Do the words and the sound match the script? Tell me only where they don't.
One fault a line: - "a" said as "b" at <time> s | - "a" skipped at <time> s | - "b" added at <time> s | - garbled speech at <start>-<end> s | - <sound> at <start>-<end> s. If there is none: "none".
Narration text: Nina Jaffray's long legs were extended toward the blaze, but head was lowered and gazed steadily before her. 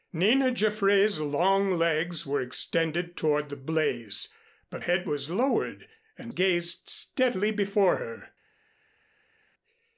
none